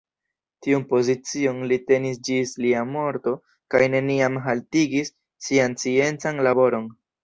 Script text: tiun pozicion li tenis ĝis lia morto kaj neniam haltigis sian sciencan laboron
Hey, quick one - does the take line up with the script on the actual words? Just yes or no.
yes